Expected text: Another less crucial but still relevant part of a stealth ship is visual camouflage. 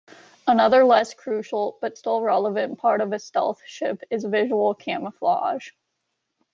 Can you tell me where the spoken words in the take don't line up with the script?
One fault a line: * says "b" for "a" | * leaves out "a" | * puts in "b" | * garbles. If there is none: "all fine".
all fine